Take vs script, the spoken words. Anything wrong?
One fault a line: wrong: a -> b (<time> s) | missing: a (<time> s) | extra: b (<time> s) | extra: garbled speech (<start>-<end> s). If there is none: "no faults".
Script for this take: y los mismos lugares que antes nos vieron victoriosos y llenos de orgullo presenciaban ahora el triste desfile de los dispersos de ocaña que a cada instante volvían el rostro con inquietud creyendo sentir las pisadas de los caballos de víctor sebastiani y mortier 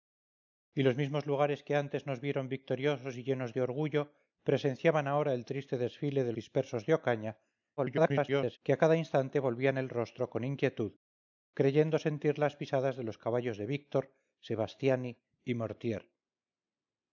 missing: los (6.3 s)
extra: garbled speech (7.8-8.6 s)